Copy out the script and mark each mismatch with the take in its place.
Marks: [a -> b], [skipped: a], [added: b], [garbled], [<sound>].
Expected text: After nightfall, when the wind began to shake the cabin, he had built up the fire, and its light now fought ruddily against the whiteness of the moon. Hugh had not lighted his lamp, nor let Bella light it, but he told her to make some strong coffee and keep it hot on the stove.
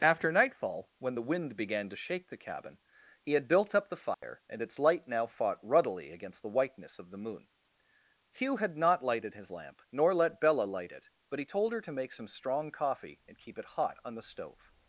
After nightfall, when the wind began to shake the cabin, he had built up the fire, [dropout] and its light now fought ruddily against the whiteness of the moon. Hugh had not lighted his lamp, nor let Bella light it, but he told her to make some strong coffee and keep it hot on the stove.